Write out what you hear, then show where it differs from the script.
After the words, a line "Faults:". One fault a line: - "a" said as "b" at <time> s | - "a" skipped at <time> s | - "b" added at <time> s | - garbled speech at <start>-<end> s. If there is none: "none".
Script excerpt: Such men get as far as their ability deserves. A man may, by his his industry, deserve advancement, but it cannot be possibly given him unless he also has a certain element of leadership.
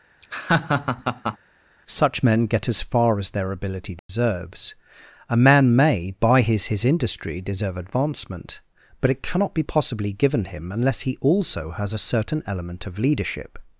Such men get as far as their ability deserves. A man may, by his his industry, deserve advancement, but it cannot be possibly given him unless he also has a certain element of leadership.
Faults:
none